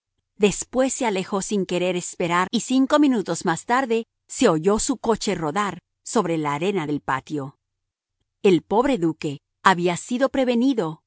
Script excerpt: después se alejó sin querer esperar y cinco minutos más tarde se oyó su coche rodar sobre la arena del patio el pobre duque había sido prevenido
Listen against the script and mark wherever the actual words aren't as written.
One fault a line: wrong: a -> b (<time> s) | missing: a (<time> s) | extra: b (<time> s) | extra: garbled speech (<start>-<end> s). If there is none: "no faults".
no faults